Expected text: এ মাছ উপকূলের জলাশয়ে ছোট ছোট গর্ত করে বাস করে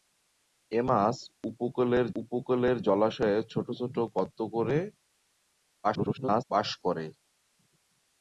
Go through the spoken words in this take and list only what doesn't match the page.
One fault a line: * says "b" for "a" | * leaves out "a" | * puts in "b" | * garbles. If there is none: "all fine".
* puts in "উপকূলের"
* garbles